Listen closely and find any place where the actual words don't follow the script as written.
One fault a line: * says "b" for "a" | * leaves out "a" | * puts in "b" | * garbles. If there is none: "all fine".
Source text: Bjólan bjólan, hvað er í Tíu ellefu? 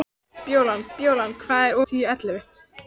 all fine